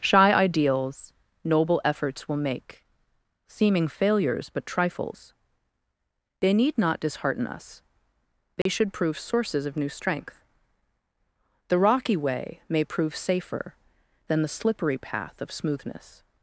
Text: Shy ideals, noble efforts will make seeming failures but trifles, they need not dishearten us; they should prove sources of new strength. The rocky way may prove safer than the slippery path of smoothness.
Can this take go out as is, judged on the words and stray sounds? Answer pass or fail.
fail